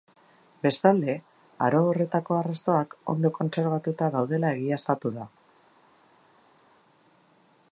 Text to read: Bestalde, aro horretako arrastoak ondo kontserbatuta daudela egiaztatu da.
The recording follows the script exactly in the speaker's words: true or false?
true